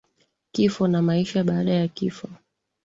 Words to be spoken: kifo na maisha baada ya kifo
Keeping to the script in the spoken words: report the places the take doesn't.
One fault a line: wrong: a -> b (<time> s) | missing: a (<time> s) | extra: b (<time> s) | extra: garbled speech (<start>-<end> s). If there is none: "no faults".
no faults